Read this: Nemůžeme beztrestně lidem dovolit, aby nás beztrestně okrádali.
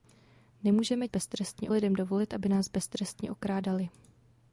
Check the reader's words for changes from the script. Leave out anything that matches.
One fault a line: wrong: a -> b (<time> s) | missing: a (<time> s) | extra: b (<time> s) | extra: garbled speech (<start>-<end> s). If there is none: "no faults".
no faults